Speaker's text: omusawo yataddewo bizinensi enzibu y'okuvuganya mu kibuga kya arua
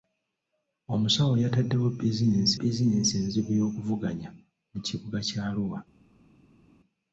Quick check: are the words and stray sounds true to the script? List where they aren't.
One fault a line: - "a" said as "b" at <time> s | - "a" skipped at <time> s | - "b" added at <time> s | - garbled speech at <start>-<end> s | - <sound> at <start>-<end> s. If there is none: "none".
- "bizinensi" added at 2.6 s